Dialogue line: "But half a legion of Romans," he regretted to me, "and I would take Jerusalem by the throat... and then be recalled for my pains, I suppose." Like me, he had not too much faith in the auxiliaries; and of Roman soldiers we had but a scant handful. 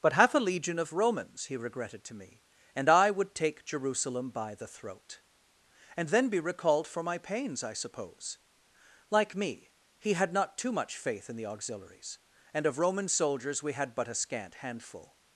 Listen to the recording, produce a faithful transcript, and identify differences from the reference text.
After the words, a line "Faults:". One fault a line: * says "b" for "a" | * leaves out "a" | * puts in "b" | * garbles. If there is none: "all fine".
"But half a legion of Romans," he regretted to me, "and I would take Jerusalem by the throat... and then be recalled for my pains, I suppose." Like me, he had not too much faith in the auxiliaries; and of Roman soldiers we had but a scant handful.
Faults:
all fine